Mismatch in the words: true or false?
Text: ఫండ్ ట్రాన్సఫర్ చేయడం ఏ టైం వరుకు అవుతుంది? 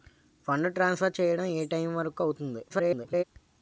true